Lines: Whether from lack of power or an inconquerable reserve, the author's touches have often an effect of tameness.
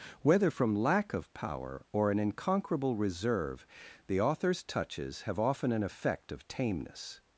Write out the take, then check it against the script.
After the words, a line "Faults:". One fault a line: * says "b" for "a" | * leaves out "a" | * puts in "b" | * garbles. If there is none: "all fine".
Whether from lack of power or an inconquerable reserve, the author's touches have often an effect of tameness.
Faults:
all fine